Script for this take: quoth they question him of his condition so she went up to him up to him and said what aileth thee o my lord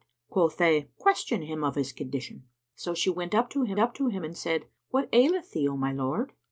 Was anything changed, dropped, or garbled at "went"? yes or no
no